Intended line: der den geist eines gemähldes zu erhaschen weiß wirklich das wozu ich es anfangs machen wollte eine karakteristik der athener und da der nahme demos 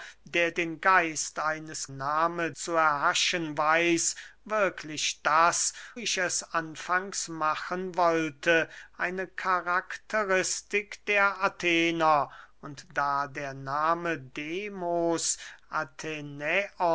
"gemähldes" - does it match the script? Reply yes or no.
no